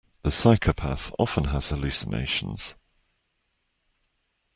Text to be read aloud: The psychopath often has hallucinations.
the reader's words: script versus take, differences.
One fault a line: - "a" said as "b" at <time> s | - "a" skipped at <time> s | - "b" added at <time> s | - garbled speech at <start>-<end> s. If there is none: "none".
none